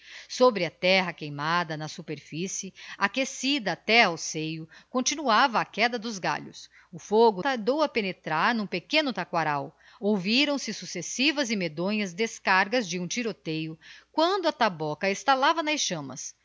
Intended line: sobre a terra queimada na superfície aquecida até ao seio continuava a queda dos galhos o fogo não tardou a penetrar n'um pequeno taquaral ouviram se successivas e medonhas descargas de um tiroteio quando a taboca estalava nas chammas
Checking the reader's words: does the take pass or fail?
fail